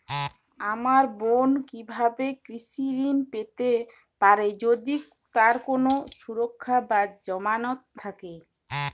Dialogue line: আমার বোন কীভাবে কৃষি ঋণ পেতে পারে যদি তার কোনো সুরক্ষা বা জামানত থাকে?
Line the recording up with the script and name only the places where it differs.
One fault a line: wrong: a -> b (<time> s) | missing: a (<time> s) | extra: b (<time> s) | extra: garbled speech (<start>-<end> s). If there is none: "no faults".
no faults